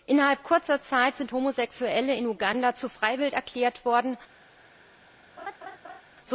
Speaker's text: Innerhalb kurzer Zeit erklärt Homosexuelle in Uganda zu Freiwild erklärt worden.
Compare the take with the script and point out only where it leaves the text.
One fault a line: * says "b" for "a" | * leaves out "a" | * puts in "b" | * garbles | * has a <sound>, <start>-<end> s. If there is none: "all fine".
* says "sind" for "erklärt"
* has a laugh, 5.4-6.0 s